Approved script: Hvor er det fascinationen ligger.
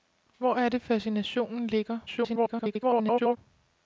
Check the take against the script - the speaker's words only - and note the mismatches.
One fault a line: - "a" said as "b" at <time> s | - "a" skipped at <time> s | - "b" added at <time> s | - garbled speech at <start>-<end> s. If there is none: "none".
- garbled speech at 2.1-3.4 s